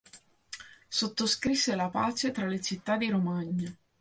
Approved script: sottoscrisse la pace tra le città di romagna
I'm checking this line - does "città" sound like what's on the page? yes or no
yes